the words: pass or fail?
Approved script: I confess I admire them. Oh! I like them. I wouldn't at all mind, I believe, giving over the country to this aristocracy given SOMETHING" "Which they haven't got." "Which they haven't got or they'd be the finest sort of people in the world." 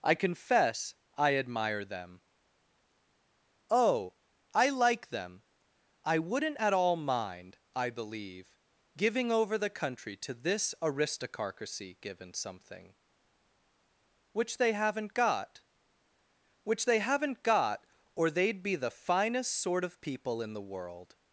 pass